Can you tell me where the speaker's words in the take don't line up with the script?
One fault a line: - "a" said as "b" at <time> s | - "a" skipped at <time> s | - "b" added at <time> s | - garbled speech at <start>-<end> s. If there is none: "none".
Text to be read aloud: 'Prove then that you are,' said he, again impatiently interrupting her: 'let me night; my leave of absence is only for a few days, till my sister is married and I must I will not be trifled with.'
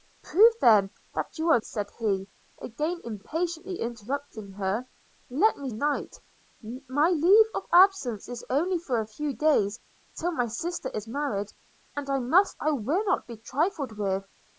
none